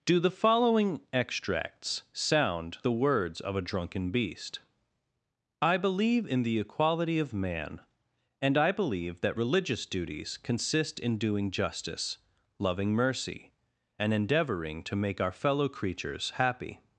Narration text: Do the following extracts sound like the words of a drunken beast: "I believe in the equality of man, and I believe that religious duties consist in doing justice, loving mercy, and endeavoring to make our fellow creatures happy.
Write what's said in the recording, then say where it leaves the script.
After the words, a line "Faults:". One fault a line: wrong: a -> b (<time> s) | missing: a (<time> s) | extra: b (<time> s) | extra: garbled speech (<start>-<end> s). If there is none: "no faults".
Do the following extracts sound the words of a drunken beast: "I believe in the equality of man, and I believe that religious duties consist in doing justice, loving mercy, and endeavoring to make our fellow creatures happy.
Faults:
missing: like (2.8 s)